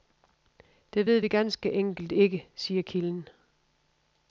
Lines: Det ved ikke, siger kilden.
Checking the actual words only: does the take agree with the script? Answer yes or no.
no